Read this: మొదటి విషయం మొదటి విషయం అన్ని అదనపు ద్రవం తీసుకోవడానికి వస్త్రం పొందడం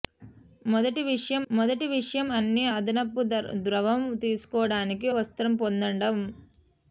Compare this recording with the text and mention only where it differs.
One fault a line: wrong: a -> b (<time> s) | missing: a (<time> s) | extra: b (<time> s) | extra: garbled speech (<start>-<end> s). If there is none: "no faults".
no faults